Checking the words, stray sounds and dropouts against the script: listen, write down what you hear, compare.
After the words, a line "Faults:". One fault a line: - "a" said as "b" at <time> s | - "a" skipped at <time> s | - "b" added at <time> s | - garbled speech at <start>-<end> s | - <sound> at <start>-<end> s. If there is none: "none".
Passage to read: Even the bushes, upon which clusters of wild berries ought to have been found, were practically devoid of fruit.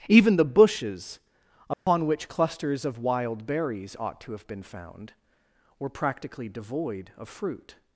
Even the bushes, upon which clusters of wild berries ought to have been found, were practically devoid of fruit.
Faults:
- dropout at 1.7-1.9 s